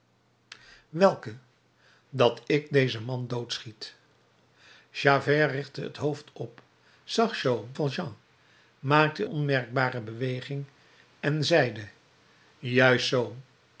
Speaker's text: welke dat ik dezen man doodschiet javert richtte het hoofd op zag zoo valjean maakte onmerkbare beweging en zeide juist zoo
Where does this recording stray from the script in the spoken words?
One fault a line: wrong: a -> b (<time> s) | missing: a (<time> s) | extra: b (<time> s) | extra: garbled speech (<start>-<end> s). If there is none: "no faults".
no faults